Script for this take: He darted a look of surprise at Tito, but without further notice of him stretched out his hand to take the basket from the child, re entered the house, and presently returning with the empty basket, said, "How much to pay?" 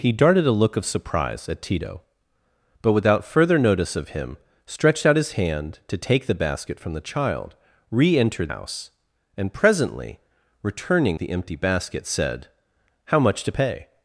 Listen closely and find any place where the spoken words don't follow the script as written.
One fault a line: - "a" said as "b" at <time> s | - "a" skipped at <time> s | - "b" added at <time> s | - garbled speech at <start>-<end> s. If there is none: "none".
- "the" skipped at 8.5 s
- "with" skipped at 11.2 s